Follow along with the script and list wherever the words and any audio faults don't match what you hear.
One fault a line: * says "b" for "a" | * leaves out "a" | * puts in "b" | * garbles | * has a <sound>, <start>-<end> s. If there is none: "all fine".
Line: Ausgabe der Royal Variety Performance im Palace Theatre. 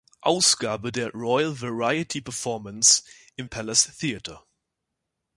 all fine